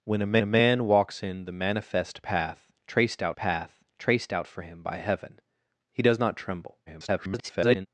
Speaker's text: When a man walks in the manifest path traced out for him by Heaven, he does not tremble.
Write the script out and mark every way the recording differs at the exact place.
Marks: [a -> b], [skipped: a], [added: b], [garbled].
When a [added: a] man walks in the manifest path traced out [added: path traced out] for him by Heaven, he does not tremble. [garbled]